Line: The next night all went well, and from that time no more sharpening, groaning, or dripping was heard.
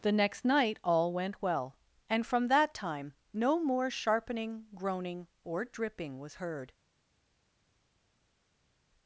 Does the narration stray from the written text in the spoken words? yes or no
no